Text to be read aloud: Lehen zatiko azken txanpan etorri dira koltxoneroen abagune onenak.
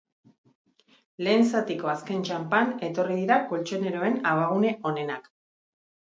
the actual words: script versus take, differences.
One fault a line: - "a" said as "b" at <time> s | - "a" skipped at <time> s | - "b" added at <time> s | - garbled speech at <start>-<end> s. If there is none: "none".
none